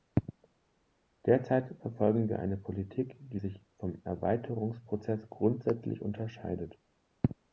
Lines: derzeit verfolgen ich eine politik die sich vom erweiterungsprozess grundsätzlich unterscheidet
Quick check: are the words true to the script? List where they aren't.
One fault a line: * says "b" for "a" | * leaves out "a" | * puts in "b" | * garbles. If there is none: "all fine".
* says "wir" for "ich"